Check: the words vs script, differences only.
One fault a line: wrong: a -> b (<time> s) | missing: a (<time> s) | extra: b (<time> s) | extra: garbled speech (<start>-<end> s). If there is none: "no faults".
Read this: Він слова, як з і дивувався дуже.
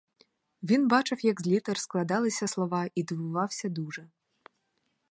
wrong: слова -> бачив (0.9 s)
extra: літер складалися слова (1.5 s)